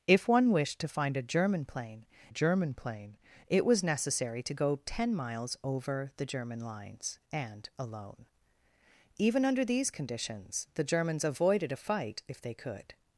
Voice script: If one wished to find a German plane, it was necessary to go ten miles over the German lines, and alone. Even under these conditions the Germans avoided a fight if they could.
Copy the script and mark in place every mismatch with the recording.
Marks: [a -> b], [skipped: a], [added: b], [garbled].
If one wished to find a German plane, [added: German plane] it was necessary to go ten miles over the German lines, and alone. Even under these conditions the Germans avoided a fight if they could.